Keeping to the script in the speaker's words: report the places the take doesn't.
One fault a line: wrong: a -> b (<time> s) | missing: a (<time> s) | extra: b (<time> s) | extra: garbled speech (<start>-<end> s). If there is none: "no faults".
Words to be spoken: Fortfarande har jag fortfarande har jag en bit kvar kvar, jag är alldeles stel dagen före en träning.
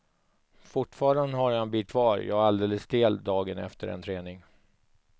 missing: fortfarande har jag (1.6 s)
missing: kvar (2.2 s)
wrong: före -> efter (3.6 s)